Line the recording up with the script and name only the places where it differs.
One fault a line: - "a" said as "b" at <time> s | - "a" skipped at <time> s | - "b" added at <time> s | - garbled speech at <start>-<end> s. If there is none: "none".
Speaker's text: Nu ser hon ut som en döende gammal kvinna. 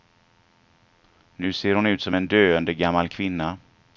none